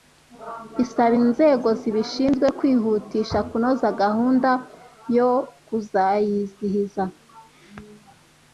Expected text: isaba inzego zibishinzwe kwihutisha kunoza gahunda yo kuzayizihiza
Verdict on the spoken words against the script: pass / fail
pass